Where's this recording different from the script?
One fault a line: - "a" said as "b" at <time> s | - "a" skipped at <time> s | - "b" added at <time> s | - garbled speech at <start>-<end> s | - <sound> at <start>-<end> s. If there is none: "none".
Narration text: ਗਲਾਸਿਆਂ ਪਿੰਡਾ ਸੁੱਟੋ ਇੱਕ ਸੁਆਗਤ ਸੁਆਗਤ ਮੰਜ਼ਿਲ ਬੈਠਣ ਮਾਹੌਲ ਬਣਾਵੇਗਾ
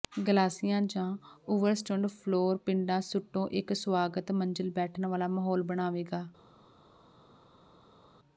- "ਜਾਂ ਓਵਰਸਟੁਡ ਫਲੋਰ" added at 0.8 s
- "ਸੁਆਗਤ" skipped at 4.3 s
- "ਵਾਲਾ" added at 5.0 s